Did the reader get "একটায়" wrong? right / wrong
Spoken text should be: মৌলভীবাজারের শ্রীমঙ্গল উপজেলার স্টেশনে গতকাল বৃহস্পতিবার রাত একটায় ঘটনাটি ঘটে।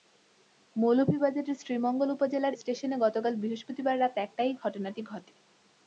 right